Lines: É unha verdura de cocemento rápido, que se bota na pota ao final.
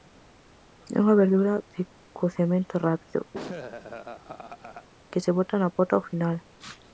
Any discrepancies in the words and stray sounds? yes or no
yes